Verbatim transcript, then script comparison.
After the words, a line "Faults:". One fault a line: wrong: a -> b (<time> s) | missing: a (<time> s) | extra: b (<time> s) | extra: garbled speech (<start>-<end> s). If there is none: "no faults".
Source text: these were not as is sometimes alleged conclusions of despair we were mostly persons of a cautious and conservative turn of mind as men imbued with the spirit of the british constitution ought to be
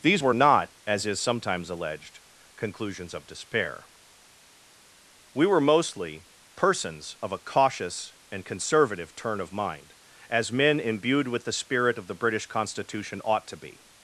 these were not as is sometimes alleged conclusions of despair we were mostly persons of a cautious and conservative turn of mind as men imbued with the spirit of the british constitution ought to be
Faults:
no faults